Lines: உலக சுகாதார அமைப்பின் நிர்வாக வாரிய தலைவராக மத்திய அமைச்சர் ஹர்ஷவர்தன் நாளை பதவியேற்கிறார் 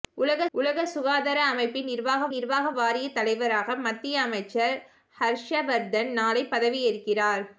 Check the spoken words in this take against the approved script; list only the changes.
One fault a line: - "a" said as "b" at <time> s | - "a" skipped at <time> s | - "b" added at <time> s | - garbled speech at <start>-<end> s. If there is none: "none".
- "உலக" added at 0.5 s
- "நிர்வாக" added at 2.3 s